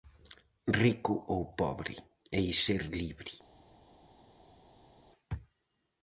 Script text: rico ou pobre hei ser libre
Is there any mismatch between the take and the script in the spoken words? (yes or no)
no